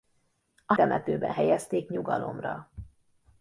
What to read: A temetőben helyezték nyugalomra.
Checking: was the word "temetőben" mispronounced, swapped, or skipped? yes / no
no